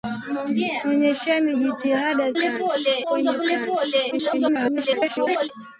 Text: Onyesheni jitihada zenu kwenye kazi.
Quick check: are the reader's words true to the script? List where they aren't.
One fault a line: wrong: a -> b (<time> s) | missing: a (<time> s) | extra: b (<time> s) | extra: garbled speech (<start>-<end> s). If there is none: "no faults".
wrong: zenu -> kazi (2.4 s)
extra: garbled speech (4.1-5.5 s)